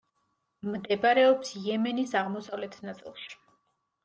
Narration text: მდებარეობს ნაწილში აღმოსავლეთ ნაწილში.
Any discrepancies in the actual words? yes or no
yes